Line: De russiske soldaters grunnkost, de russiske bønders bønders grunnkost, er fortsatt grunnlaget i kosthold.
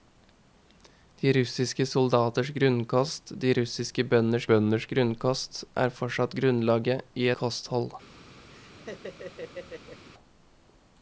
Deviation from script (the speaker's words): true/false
false